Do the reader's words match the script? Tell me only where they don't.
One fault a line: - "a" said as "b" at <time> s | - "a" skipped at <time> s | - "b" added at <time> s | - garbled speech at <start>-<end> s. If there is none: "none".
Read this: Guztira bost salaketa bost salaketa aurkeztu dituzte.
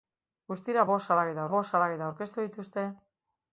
none